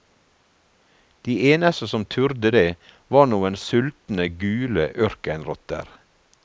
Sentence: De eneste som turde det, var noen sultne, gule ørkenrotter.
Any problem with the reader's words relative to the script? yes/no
no